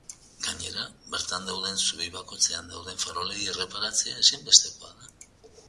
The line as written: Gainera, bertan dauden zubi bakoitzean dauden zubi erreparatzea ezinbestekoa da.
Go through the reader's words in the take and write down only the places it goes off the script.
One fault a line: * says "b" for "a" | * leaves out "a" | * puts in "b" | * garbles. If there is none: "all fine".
* says "farolei" for "zubi"